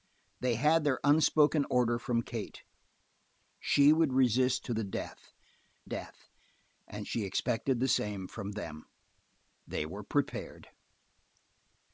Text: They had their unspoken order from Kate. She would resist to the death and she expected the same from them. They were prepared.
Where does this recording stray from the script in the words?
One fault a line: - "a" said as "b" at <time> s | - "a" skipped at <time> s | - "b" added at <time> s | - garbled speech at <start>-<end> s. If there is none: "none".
- "death" added at 5.8 s